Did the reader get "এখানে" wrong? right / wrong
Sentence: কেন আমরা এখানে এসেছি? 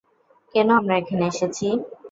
right